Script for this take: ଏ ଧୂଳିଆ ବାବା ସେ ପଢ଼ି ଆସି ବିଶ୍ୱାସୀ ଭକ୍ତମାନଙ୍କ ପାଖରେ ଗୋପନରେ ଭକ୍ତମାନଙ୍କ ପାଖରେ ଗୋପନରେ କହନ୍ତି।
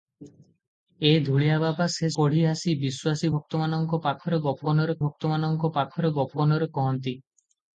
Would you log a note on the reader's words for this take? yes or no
no